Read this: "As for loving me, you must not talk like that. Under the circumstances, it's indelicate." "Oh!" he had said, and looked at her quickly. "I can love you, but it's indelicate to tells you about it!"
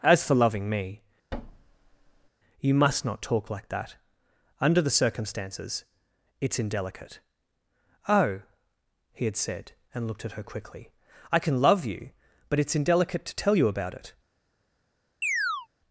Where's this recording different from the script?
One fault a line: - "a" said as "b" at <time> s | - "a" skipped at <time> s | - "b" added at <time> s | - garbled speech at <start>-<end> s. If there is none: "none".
- "tells" said as "tell" at 13.4 s